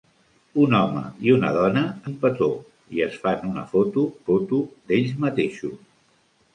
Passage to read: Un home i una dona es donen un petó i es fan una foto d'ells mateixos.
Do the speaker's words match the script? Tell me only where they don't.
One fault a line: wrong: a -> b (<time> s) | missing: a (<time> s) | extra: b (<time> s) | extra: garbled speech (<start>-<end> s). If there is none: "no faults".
missing: es donen (1.8 s)
extra: foto (4.3 s)